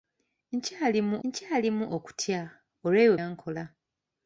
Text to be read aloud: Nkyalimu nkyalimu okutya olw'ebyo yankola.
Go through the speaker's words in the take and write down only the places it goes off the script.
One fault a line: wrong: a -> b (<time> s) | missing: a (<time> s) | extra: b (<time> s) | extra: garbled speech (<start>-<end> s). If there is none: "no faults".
no faults